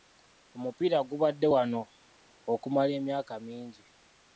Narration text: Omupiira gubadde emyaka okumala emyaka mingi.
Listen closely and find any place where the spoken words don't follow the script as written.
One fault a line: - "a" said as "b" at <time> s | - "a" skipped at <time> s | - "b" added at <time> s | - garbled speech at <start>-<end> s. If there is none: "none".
- "emyaka" said as "wano" at 1.5 s